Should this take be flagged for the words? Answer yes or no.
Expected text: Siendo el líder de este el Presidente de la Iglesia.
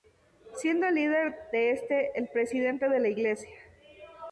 no